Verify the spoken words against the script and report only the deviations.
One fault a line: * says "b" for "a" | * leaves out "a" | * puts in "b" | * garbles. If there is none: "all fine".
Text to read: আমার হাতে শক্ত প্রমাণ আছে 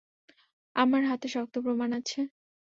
all fine